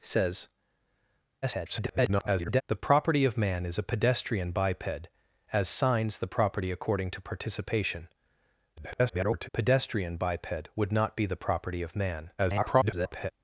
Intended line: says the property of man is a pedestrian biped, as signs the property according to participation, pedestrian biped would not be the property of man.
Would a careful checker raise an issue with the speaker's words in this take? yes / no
yes